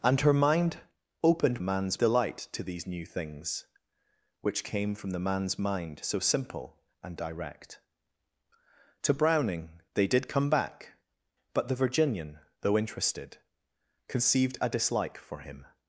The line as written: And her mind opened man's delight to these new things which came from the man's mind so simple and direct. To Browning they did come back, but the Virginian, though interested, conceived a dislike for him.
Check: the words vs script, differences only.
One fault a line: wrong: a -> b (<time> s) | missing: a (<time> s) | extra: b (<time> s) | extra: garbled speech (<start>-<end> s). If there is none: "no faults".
no faults